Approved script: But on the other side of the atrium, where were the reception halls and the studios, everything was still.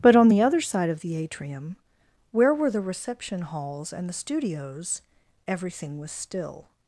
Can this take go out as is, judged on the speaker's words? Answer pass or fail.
pass